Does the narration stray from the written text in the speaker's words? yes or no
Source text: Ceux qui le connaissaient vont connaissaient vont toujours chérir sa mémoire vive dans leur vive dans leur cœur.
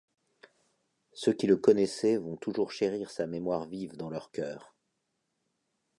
yes